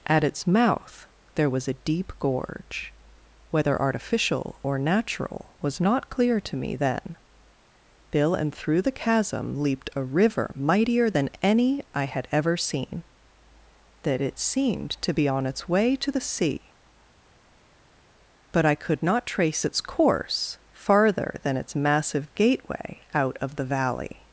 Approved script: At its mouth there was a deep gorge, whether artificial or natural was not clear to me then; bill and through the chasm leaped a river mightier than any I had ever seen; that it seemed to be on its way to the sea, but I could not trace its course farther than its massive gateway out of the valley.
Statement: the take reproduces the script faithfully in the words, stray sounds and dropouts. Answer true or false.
true